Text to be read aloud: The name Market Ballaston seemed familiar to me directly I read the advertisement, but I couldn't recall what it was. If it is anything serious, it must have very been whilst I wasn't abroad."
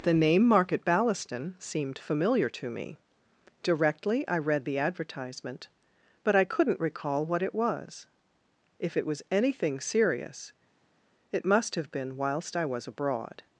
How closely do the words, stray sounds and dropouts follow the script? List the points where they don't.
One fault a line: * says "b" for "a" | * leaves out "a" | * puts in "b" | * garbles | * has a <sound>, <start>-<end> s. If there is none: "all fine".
* says "was" for "is"
* leaves out "very"
* says "was" for "wasn't"